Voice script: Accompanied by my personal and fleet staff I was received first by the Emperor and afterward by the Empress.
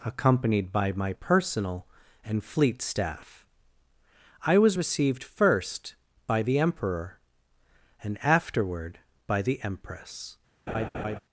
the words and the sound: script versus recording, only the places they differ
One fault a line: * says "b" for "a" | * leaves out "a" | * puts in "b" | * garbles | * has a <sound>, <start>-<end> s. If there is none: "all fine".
* has a laugh, 10.7-11.2 s